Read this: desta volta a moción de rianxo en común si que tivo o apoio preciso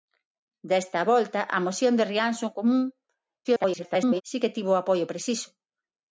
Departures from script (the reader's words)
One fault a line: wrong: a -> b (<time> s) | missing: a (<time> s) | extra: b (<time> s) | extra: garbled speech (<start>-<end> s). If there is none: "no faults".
extra: garbled speech (3.4-4.2 s)